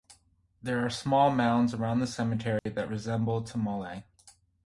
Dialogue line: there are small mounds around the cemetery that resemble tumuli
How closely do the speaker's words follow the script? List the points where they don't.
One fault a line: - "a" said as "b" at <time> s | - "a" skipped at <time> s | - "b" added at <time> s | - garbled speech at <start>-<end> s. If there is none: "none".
none